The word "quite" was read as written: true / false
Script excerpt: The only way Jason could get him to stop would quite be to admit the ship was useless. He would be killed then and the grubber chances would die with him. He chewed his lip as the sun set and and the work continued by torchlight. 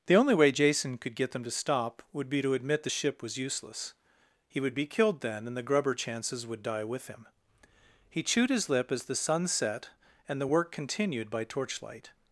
false